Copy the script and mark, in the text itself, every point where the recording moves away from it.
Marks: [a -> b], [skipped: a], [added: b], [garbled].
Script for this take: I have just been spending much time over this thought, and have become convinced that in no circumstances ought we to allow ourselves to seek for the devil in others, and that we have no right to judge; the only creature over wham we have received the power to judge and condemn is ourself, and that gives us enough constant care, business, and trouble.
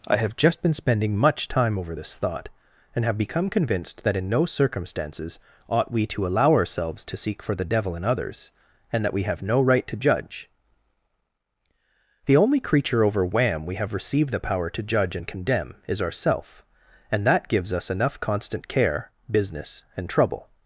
I have just been spending much time over this thought, and have become convinced that in no circumstances ought we to allow ourselves to seek for the devil in others, and that we have no right to judge; the only creature over wham we have received the power to judge and condemn is ourself, and that gives us enough constant care, business, and trouble.